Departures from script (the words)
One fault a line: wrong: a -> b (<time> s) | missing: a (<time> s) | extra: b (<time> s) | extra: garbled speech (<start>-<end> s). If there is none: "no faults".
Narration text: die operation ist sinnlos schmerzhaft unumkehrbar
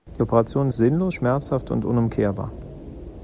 extra: und (1.7 s)